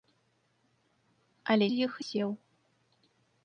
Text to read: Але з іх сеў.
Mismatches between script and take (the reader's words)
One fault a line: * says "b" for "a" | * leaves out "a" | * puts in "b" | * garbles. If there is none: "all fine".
all fine